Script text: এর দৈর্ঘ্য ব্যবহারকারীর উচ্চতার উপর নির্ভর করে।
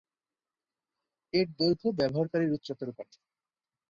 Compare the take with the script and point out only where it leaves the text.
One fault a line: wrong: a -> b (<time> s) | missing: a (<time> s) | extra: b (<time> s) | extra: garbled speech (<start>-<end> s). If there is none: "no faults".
missing: উপর নির্ভর (2.9 s)